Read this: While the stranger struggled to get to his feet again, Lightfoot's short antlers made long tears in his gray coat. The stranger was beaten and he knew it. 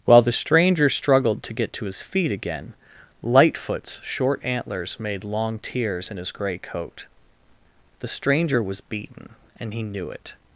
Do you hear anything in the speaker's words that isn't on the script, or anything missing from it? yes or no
no